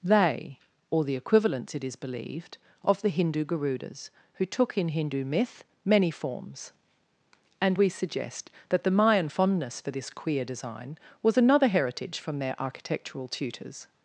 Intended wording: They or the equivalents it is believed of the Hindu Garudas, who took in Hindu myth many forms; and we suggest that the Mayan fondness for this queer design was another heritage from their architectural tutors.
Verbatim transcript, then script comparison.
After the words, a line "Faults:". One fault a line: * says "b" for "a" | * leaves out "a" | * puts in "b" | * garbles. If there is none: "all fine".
They or the equivalents it is believed of the Hindu Garudas, who took in Hindu myth many forms; and we suggest that the Mayan fondness for this queer design was another heritage from their architectural tutors.
Faults:
all fine